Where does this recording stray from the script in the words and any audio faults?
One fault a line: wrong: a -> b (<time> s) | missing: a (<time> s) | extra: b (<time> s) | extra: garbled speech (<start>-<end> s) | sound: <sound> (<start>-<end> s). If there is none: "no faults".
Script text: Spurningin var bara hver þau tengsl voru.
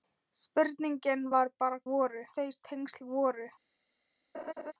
wrong: hver -> voru (1.9 s)
sound: laugh (4.3-4.7 s)